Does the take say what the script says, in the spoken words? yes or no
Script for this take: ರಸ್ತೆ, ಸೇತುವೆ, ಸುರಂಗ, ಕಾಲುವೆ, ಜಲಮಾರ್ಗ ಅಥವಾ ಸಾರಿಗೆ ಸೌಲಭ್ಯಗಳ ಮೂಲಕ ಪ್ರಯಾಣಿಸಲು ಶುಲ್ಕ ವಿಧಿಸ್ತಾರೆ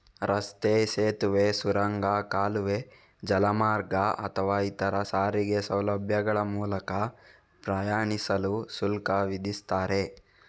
no